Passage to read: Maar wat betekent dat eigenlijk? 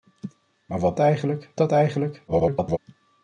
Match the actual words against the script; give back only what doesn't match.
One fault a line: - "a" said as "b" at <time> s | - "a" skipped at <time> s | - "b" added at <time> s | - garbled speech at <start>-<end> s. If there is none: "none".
- "betekent" said as "eigenlijk" at 1.0 s
- garbled speech at 2.3-2.8 s